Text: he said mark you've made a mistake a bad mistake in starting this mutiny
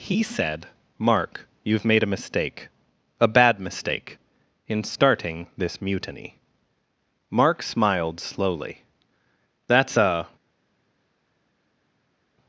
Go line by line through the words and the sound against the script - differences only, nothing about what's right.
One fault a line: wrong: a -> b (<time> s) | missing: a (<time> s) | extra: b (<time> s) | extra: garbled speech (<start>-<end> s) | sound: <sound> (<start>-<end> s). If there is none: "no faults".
extra: mark smiled slowly that's a (7.3 s)